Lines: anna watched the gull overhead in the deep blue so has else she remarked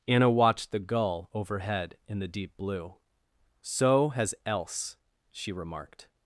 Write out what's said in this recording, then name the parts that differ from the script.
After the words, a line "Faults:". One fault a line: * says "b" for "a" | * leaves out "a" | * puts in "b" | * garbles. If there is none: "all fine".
anna watched the gull overhead in the deep blue so has else she remarked
Faults:
all fine